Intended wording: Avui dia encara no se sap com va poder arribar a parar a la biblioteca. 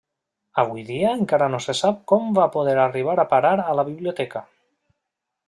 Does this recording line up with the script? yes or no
yes